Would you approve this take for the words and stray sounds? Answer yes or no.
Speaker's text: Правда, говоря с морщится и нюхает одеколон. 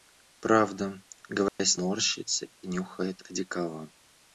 no